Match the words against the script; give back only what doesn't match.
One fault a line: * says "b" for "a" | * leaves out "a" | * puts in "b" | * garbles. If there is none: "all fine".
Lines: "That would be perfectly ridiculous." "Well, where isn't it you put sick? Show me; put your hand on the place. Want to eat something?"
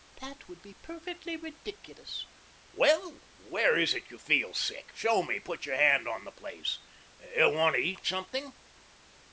* says "is" for "isn't"
* says "feel" for "put"